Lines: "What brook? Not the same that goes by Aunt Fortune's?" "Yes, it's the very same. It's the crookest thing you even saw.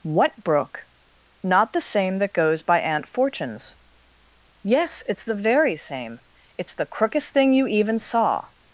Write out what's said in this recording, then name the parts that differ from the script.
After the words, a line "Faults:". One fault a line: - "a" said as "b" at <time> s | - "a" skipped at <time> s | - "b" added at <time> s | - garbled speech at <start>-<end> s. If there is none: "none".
"What brook? Not the same that goes by Aunt Fortune's?" "Yes, it's the very same. It's the crookest thing you even saw.
Faults:
none